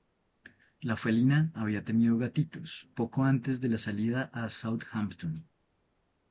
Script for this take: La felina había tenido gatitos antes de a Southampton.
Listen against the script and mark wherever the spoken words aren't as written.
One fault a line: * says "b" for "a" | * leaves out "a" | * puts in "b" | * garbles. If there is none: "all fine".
* puts in "poco"
* puts in "la salida"